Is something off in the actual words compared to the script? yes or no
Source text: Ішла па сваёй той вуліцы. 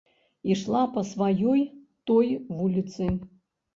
no